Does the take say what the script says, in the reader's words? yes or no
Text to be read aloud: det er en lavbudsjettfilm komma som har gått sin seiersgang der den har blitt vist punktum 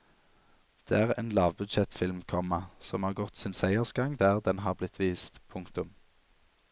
yes